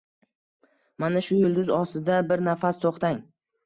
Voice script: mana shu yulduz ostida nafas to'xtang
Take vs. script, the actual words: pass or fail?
fail